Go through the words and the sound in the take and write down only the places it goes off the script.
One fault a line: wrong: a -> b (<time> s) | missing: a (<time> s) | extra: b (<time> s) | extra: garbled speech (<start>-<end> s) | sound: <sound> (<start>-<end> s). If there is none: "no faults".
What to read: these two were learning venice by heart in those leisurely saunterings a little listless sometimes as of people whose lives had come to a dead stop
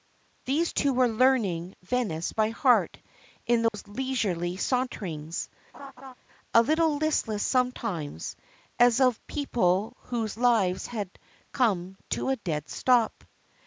sound: dropout (3.7-3.7 s)
sound: laugh (5.7-6.1 s)